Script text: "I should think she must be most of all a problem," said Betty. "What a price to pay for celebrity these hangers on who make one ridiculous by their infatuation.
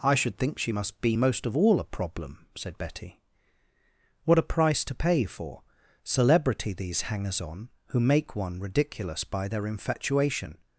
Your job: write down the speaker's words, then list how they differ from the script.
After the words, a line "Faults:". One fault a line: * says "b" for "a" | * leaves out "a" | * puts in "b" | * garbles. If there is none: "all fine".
"I should think she must be most of all a problem," said Betty. "What a price to pay for celebrity these hangers on who make one ridiculous by their infatuation.
Faults:
all fine